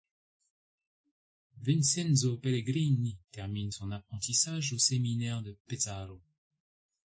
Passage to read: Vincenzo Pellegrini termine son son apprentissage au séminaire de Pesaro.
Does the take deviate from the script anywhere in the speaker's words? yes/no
yes